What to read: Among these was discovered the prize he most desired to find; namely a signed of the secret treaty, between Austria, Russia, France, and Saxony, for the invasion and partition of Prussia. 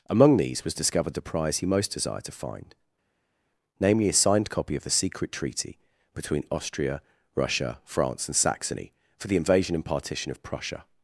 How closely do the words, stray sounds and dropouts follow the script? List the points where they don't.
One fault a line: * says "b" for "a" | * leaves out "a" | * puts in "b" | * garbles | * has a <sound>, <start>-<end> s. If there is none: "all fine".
* puts in "copy"